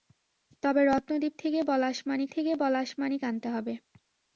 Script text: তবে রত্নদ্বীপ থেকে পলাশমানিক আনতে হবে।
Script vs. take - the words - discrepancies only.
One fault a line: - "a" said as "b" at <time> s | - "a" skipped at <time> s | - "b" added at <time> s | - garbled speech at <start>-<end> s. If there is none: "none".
- "থেকে পলাশমানিক" added at 2.3 s